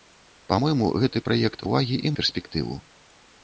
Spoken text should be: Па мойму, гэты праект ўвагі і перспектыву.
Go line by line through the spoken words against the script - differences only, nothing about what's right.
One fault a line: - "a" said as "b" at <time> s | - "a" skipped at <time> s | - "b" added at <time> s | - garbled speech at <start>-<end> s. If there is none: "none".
none